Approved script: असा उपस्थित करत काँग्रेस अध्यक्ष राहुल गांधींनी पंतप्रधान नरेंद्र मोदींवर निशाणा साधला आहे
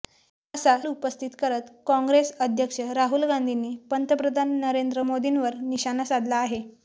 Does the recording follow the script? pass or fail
pass